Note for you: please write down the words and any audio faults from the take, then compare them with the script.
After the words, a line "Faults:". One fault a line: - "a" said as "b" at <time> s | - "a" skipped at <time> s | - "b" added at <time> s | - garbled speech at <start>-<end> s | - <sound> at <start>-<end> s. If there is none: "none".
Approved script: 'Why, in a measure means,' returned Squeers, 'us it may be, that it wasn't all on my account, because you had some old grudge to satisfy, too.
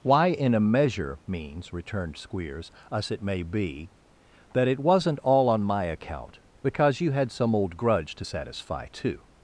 'Why, in a measure means,' returned Squeers, 'us it may be, that it wasn't all on my account, because you had some old grudge to satisfy, too.
Faults:
none